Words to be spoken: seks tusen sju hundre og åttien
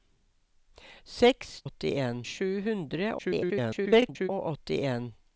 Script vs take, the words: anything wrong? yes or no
yes